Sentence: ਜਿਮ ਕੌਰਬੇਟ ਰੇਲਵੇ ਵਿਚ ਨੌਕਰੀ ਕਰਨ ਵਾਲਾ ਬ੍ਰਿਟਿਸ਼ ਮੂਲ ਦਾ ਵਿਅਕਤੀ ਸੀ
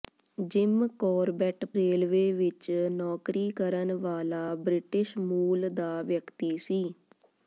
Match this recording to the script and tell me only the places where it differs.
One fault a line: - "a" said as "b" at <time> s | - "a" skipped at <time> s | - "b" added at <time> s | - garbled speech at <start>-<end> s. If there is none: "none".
none